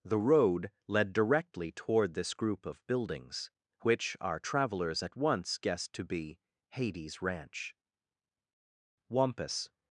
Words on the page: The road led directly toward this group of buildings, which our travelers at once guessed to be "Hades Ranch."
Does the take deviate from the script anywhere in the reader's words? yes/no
yes